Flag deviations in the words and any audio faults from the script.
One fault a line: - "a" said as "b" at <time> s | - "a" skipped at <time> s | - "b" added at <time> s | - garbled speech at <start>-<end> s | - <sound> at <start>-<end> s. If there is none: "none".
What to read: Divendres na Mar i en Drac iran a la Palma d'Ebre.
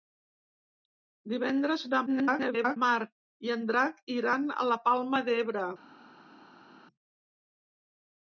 - garbled speech at 2.1-2.8 s